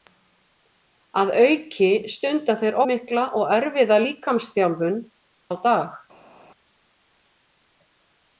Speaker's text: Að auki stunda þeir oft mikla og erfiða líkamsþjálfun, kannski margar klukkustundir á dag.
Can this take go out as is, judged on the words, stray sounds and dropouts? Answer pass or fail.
fail